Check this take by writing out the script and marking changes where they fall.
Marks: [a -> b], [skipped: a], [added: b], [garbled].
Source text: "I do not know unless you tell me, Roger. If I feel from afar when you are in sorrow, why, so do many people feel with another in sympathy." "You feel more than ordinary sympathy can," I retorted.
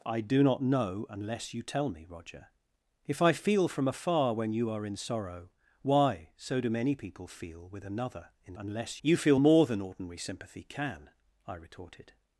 "I do not know unless you tell me, Roger. If I feel from afar when you are in sorrow, why, so do many people feel with another in [sympathy." -> unless] "You feel more than ordinary sympathy can," I retorted.